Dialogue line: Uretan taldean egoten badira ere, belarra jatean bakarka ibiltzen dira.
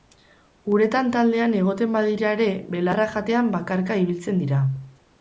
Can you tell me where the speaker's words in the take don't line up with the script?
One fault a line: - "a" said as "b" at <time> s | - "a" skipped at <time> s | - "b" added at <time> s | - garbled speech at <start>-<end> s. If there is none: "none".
none